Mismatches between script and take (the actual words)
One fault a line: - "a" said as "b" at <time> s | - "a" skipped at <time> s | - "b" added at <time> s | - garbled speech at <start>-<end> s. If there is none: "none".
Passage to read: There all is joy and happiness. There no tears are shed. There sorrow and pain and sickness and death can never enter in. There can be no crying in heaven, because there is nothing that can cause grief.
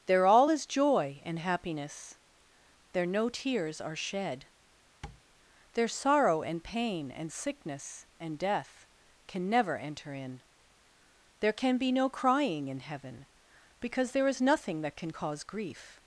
none